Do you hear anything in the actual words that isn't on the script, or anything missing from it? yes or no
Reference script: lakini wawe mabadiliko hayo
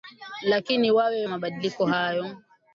no